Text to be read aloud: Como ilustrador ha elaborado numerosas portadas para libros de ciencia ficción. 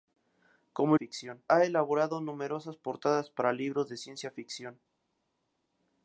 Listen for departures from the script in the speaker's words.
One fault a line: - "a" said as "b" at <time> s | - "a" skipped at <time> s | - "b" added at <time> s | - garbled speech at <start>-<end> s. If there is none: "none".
- "ilustrador" said as "ficción" at 0.9 s